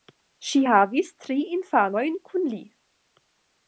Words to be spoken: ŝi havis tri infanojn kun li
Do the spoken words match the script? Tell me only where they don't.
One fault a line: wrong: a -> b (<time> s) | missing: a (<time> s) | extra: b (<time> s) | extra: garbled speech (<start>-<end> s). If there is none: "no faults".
no faults